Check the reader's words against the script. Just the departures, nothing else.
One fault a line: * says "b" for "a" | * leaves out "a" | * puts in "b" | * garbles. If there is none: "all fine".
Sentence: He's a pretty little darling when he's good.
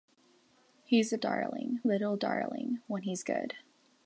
* says "darling" for "pretty"